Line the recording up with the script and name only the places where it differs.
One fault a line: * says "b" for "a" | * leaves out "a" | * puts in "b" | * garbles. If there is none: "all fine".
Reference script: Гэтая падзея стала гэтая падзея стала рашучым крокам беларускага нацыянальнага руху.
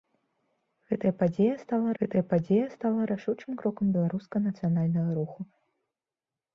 all fine